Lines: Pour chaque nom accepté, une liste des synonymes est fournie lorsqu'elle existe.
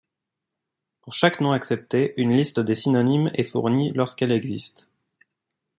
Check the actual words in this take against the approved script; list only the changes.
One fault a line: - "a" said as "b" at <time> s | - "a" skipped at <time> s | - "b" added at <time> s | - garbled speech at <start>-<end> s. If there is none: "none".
none